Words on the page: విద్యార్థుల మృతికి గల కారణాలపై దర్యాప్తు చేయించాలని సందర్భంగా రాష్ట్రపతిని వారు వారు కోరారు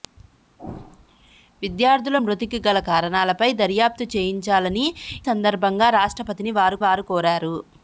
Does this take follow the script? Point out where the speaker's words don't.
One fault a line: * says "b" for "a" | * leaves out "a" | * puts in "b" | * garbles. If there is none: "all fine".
all fine